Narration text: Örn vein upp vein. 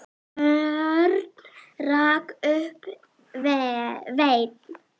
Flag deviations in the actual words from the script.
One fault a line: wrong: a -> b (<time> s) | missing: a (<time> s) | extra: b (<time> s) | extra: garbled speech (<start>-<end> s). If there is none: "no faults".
wrong: vein -> rak (1.8 s)